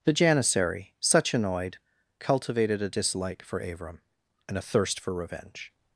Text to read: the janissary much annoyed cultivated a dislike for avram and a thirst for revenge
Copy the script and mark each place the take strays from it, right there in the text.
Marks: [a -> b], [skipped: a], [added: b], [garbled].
the janissary [much -> such] annoyed cultivated a dislike for avram and a thirst for revenge